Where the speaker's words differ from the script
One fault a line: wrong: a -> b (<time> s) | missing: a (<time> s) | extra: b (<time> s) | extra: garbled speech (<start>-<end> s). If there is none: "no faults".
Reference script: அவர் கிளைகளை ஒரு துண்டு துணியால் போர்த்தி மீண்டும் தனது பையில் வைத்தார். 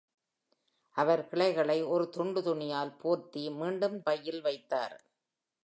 missing: தனது (4.0 s)